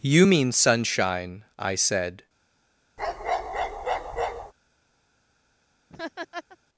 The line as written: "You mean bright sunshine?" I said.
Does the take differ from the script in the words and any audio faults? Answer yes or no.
yes